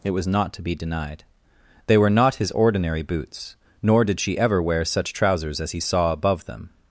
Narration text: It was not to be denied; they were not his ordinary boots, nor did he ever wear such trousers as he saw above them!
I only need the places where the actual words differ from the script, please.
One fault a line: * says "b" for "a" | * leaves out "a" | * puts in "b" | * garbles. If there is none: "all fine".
* says "she" for "he"